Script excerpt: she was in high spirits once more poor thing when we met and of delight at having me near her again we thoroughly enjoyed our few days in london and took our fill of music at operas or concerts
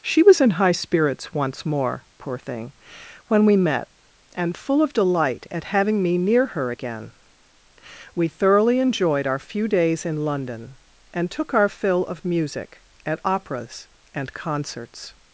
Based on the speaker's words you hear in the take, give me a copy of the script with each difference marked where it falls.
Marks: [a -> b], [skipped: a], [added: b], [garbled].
she was in high spirits once more poor thing when we met and [added: full] of delight at having me near her again we thoroughly enjoyed our few days in london and took our fill of music at operas [or -> and] concerts